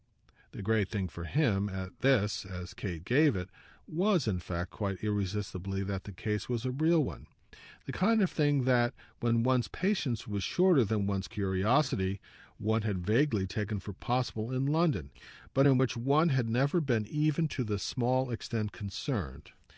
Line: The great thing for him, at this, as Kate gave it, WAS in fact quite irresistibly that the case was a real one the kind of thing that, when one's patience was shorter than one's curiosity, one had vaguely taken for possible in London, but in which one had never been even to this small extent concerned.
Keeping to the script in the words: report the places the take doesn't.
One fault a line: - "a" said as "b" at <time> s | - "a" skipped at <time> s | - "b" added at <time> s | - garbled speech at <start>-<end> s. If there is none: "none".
none